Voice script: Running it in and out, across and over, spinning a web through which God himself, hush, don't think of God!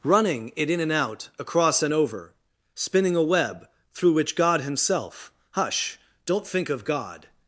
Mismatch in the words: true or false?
false